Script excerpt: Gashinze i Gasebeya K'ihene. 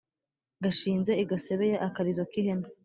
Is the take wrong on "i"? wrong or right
right